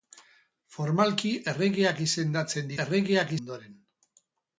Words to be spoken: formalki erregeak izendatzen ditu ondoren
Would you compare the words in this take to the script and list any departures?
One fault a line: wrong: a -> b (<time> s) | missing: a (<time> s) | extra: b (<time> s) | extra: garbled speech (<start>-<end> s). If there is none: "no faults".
wrong: ditu -> erregeak (2.8 s)